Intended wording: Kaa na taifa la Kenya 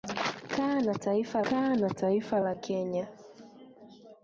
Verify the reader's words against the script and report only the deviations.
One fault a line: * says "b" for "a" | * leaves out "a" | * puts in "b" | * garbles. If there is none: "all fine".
* puts in "kaa na taifa"